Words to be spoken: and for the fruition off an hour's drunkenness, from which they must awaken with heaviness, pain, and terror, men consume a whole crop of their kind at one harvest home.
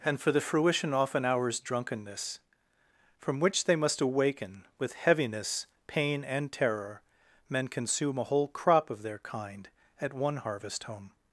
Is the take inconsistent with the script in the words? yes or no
no